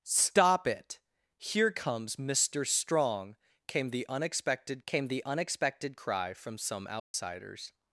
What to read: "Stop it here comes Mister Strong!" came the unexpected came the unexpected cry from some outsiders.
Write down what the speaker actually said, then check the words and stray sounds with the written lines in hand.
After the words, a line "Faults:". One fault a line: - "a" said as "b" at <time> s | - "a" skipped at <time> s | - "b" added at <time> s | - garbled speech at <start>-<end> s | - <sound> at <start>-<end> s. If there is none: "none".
"Stop it here comes Mister Strong!" came the unexpected came the unexpected cry from some outsiders.
Faults:
- dropout at 7.0-7.1 s